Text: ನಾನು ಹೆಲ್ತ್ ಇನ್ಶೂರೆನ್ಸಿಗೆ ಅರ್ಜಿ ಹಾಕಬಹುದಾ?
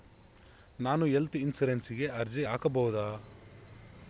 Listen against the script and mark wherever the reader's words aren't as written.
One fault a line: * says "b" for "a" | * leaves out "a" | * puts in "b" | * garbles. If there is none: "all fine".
all fine